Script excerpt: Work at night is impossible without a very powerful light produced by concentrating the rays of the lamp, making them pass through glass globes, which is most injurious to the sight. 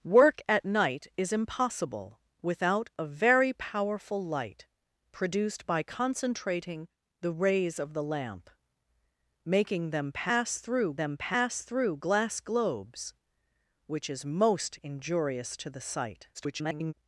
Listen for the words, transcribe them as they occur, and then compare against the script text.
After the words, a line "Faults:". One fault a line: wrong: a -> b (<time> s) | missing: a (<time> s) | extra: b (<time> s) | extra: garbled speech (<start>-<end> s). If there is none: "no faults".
Work at night is impossible without a very powerful light produced by concentrating the rays of the lamp, making them pass through them pass through glass globes, which is most injurious to the sight. [garbled]
Faults:
extra: them pass through (11.0 s)
extra: garbled speech (16.3-16.9 s)